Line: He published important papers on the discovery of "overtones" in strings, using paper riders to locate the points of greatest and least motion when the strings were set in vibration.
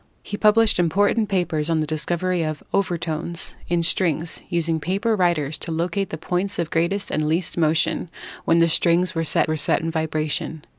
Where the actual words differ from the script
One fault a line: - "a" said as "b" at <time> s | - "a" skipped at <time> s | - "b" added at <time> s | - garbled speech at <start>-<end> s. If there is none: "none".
- "were set" added at 9.5 s